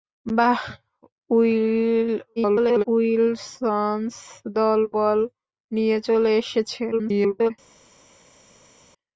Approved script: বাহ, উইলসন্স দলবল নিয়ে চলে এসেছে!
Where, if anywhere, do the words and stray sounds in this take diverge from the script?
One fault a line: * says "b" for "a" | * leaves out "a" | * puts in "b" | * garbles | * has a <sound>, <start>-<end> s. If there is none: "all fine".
* garbles
* garbles